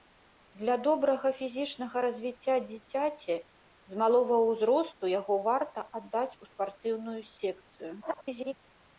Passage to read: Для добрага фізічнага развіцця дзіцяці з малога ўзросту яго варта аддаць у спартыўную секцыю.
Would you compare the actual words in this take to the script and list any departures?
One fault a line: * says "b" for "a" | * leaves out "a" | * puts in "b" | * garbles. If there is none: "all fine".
* garbles